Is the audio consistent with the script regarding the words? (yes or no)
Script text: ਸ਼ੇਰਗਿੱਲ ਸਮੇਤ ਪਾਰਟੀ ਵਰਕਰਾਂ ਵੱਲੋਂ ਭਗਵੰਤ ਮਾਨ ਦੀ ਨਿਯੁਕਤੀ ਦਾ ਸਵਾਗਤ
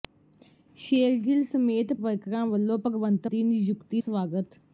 no